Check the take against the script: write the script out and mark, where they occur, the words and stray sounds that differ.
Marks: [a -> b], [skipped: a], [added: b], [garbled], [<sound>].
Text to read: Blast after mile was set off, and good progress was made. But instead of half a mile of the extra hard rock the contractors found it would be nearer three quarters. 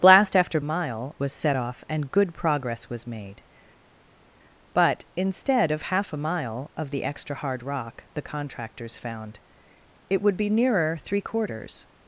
Blast after mile was set off, and good progress was made. But instead of half a mile of the extra hard rock the contractors found it would be nearer three quarters.